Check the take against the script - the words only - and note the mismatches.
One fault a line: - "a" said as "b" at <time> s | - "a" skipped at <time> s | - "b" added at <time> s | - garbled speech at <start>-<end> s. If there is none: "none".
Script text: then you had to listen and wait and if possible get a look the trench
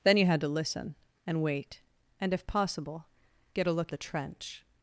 none